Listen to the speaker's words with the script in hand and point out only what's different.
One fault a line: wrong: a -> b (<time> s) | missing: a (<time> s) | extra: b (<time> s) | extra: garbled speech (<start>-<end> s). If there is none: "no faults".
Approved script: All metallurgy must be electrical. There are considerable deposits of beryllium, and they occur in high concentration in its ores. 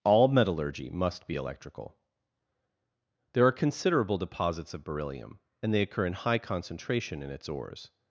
no faults